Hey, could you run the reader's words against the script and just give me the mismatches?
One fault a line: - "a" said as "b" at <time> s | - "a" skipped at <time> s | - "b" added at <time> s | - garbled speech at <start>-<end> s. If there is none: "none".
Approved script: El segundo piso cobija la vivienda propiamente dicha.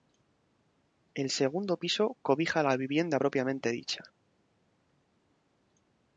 none